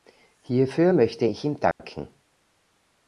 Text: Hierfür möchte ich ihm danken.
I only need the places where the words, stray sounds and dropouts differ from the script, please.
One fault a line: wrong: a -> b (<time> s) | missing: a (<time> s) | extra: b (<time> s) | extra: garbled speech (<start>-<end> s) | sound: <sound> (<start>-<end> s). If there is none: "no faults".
sound: dropout (1.7-1.8 s)